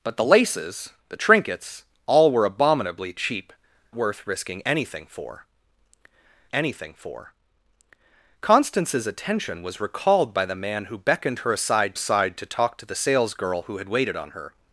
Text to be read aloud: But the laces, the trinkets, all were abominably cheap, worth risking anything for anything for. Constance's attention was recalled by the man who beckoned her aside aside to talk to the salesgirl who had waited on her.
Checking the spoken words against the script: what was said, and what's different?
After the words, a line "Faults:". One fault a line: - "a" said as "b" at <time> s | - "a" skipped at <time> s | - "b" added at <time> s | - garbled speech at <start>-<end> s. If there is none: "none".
But the laces, the trinkets, all were abominably cheap, worth risking anything for anything for. Constance's attention was recalled by the man who beckoned her aside aside to talk to the salesgirl who had waited on her.
Faults:
none